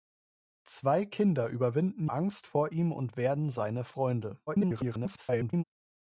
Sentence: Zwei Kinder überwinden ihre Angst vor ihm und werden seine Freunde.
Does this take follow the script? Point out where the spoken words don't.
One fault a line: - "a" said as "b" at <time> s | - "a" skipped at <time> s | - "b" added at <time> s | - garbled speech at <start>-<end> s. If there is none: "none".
- "ihre" skipped at 2.1 s
- garbled speech at 4.5-5.6 s